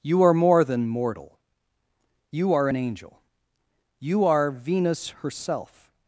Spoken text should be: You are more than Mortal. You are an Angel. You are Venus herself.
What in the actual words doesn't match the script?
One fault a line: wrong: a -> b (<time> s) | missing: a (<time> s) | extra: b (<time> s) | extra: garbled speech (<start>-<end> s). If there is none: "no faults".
no faults